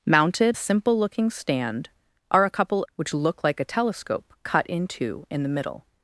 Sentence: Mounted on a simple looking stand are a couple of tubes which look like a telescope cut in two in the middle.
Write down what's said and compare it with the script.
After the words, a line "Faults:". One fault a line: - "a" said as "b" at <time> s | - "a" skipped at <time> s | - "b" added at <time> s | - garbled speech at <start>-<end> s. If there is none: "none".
Mounted a simple looking stand are a couple which look like a telescope cut in two in the middle.
Faults:
- "on" skipped at 0.6 s
- "of tubes" skipped at 2.8 s